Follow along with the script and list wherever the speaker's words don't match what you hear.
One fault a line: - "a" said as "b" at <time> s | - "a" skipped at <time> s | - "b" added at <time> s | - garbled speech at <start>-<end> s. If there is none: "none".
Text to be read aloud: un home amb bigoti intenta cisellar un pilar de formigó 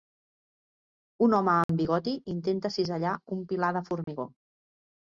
none